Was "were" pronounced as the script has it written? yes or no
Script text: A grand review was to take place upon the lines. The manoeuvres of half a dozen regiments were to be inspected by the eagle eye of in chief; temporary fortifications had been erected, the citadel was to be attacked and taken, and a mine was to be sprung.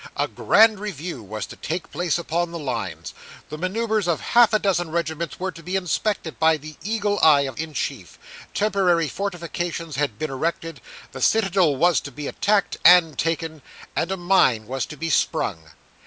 yes